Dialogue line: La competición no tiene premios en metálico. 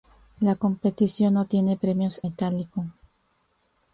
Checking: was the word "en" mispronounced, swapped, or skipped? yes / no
yes